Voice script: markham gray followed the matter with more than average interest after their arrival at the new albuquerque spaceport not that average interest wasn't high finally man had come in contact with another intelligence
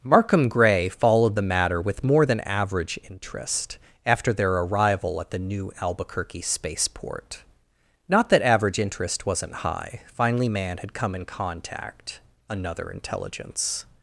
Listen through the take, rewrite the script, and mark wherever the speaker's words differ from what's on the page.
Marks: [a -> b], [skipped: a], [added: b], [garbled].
markham gray followed the matter with more than average interest after their arrival at the new albuquerque spaceport not that average interest wasn't high finally man had come in contact [skipped: with] another intelligence